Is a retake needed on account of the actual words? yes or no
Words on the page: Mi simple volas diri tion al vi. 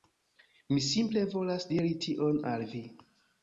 no